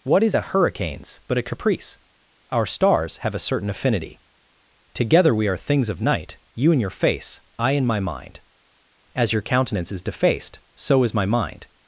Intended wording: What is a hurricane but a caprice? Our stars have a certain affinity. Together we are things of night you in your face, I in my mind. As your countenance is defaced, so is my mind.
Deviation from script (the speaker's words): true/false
true